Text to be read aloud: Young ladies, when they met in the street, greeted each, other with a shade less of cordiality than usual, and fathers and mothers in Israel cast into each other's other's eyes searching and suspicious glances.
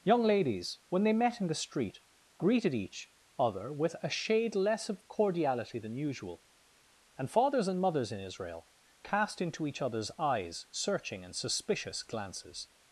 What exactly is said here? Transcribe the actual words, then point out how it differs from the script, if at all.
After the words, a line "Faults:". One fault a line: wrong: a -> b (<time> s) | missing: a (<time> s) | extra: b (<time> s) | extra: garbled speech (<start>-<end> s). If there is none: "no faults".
Young ladies, when they met in the street, greeted each, other with a shade less of cordiality than usual, and fathers and mothers in Israel cast into each other's eyes searching and suspicious glances.
Faults:
missing: other's (10.1 s)